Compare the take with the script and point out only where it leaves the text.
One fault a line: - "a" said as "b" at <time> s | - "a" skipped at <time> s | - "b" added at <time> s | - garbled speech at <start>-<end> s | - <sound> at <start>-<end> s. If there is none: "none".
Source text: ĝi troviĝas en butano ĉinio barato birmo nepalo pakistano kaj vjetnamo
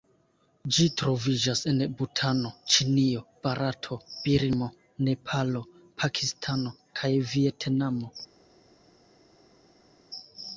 none